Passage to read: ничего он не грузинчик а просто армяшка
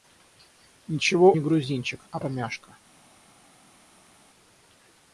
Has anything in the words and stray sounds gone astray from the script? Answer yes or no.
yes